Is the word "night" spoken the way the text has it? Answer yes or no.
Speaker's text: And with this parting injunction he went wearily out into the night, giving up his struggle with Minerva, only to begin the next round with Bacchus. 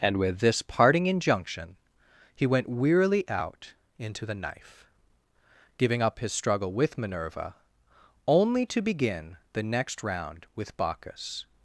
no